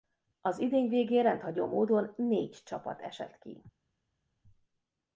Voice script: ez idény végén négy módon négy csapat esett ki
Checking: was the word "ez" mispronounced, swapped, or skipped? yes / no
yes